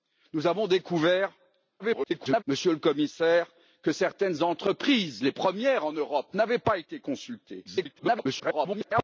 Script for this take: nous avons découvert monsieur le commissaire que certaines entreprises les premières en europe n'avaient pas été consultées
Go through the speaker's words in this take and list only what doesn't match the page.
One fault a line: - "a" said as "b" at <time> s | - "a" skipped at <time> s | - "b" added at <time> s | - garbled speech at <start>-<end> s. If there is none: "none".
- garbled speech at 1.8-2.4 s
- garbled speech at 7.6-9.0 s